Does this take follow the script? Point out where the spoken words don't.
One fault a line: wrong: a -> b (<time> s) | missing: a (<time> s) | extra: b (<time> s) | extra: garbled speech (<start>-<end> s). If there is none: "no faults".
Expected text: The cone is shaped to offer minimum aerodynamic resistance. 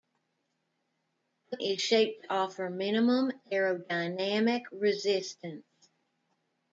missing: cone (1.6 s)